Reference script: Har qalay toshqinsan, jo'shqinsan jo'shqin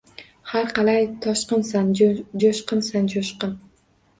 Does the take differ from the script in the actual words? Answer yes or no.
no